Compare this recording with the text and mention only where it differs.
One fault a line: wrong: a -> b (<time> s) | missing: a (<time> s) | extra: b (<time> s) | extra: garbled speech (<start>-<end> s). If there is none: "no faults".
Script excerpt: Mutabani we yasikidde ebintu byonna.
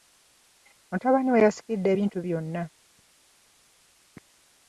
no faults